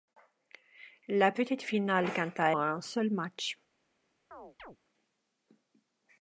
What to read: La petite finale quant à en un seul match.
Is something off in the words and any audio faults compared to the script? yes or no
yes